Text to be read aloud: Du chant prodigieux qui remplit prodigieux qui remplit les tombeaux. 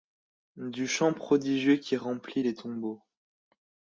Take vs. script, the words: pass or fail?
fail